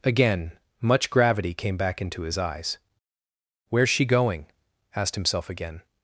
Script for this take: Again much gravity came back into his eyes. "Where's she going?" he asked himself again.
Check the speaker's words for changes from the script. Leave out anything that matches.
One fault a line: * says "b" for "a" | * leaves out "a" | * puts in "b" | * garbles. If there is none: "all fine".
* leaves out "he"